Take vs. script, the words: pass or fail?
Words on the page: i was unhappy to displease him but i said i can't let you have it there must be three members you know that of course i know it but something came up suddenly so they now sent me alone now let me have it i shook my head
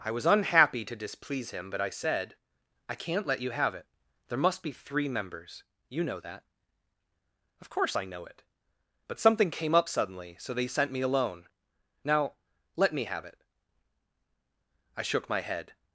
fail